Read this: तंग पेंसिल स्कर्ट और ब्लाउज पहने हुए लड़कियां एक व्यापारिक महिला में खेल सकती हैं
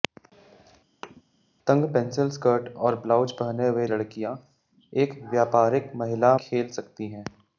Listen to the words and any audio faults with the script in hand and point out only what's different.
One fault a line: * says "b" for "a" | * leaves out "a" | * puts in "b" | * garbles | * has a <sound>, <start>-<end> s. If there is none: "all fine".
* has a thud, 1.0-1.2 s
* leaves out "में"